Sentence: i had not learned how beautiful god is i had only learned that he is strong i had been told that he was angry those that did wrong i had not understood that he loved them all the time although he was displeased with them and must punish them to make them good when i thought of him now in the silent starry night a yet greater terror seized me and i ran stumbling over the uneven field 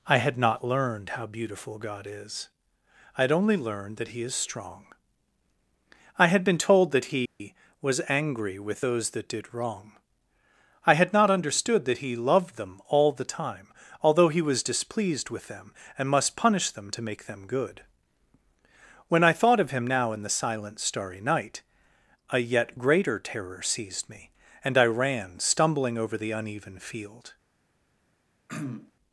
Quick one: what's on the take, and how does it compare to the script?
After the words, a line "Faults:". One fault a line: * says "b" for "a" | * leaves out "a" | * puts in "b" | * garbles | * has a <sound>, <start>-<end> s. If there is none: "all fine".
i had not learned how beautiful god is i had only learned that he is strong i had been told that he was angry with those that did wrong i had not understood that he loved them all the time although he was displeased with them and must punish them to make them good when i thought of him now in the silent starry night a yet greater terror seized me and i ran stumbling over the uneven field
Faults:
* has a dropout, 7.3-7.4 s
* puts in "with"
* has a throat clearing, 28.5-28.9 s